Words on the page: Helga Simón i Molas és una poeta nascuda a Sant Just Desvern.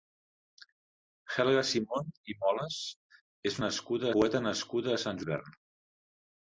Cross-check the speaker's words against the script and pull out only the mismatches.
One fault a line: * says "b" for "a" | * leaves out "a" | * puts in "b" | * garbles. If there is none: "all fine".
* says "nascuda" for "una"
* leaves out "Just"